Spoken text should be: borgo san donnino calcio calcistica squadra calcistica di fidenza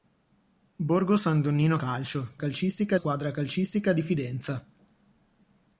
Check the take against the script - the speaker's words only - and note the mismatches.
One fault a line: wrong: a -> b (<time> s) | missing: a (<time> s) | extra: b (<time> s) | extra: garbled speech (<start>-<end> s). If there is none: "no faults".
no faults